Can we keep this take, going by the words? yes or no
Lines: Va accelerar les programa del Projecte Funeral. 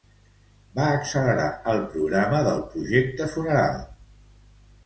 no